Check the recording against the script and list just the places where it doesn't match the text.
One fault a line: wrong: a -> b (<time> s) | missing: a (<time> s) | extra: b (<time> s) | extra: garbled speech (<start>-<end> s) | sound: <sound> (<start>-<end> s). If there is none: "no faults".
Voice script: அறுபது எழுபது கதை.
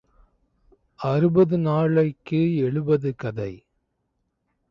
extra: நாளைக்கு (1.6 s)